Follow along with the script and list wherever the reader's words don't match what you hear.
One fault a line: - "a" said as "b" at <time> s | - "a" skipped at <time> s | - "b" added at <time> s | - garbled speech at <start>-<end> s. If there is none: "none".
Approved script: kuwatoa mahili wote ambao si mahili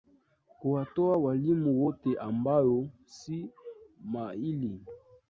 - "mahili" said as "walimu" at 1.2 s